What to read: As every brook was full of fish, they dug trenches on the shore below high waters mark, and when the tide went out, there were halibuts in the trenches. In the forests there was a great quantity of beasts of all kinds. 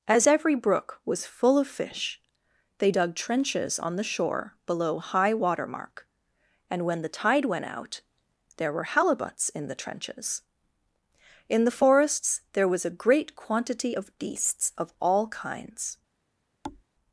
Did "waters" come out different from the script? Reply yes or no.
yes